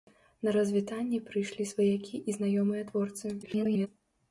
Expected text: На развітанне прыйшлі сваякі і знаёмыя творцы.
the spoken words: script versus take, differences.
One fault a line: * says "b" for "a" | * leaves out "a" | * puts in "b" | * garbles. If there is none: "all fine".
* garbles